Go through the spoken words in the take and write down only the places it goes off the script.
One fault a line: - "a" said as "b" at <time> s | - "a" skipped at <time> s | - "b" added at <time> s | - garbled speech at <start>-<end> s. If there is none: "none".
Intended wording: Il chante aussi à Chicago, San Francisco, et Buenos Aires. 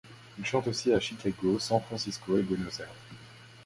none